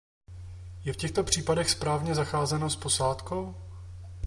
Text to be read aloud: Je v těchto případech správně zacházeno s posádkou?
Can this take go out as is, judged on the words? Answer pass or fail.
pass